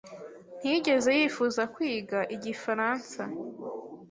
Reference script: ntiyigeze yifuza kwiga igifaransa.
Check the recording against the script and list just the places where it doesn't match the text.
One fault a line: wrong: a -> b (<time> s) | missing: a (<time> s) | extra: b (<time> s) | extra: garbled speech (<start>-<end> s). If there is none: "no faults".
no faults